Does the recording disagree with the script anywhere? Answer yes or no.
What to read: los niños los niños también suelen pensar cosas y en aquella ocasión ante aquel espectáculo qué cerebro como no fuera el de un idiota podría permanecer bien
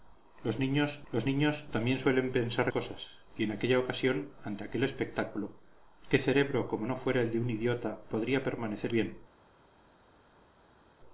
no